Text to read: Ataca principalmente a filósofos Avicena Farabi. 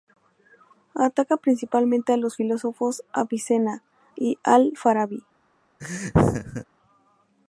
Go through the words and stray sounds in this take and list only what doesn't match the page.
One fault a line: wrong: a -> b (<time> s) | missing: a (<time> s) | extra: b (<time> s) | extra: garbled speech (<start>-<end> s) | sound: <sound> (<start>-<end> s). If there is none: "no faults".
extra: los (2.2 s)
extra: y Al (4.2 s)
sound: laugh (5.8-6.6 s)